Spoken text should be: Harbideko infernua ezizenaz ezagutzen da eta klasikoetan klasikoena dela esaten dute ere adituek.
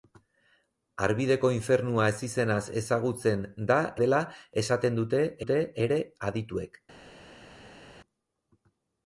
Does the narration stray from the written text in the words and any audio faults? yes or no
yes